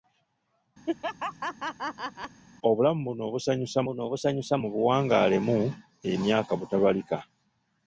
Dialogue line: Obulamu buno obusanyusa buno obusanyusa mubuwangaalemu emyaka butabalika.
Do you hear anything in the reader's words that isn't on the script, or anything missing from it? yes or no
no